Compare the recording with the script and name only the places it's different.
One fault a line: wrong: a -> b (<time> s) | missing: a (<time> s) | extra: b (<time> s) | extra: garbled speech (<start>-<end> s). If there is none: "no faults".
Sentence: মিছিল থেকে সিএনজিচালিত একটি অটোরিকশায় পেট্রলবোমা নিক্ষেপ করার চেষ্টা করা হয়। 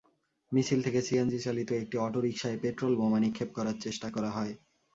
no faults